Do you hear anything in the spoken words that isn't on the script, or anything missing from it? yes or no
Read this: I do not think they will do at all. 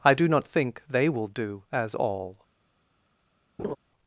yes